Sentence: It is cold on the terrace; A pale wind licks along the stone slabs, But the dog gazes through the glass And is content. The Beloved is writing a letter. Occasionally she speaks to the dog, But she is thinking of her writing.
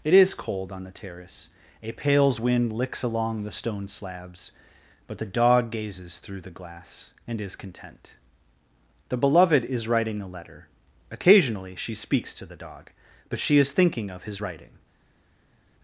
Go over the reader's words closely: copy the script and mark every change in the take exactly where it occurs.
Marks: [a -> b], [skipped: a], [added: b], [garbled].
It is cold on the terrace; A [pale -> pales] wind licks along the stone slabs, But the dog gazes through the glass And is content. The Beloved is writing a letter. Occasionally she speaks to the dog, But she is thinking of [her -> his] writing.